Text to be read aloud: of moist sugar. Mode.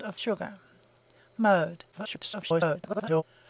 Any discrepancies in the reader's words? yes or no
yes